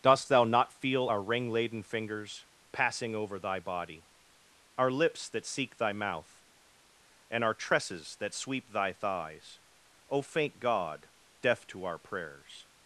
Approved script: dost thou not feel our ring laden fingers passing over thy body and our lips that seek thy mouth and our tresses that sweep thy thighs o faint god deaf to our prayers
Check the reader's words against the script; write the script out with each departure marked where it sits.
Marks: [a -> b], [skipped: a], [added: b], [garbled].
dost thou not feel our ring laden fingers passing over thy body [skipped: and] our lips that seek thy mouth and our tresses that sweep thy thighs o faint god deaf to our prayers